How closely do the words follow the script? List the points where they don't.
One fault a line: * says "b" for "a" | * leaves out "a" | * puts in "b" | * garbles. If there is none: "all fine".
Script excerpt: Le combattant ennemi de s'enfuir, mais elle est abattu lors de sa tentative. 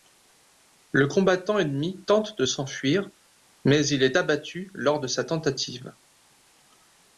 * puts in "tente"
* says "il" for "elle"